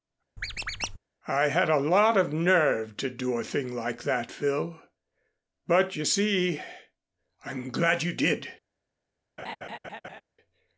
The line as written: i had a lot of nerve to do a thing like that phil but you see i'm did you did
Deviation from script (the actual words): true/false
true